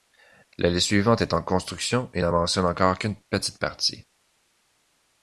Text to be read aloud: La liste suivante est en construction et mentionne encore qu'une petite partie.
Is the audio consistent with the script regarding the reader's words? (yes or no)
no